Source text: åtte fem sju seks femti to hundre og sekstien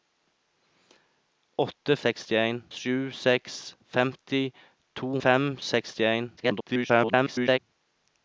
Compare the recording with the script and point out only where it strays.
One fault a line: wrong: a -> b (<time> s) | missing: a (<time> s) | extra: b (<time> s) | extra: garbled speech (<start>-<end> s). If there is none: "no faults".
wrong: fem -> sekstien (2.0 s)
wrong: hundre -> fem (5.2 s)
extra: garbled speech (6.4-7.6 s)